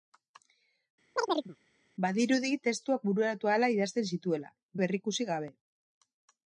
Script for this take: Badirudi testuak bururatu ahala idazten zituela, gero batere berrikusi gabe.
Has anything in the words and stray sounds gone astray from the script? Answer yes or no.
yes